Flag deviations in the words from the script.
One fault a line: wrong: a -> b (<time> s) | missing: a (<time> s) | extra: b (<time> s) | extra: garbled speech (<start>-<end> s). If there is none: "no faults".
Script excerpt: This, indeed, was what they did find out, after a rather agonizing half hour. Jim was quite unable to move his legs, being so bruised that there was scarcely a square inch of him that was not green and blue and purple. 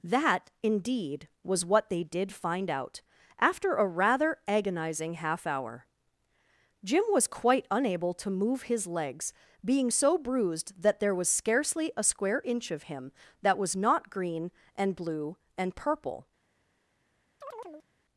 wrong: This -> That (0.0 s)